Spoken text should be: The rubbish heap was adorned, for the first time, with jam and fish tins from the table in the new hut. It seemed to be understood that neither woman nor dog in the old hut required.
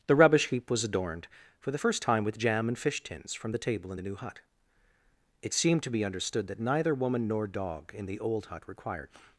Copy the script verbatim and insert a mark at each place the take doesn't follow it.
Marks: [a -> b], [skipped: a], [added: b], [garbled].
The rubbish heap was adorned, for the first time, with jam and fish tins from the table in the new hut. It seemed to be understood that neither woman nor dog in the old hut required.